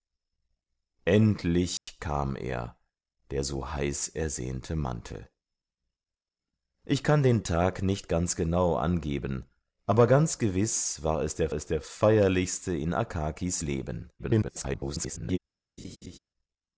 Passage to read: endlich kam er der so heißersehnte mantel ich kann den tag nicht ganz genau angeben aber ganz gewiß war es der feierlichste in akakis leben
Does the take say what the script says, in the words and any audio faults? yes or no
no